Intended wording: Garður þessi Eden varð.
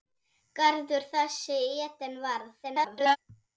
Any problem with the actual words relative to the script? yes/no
yes